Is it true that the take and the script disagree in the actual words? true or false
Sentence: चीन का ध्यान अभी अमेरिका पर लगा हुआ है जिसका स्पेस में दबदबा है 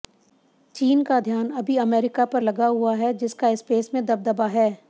false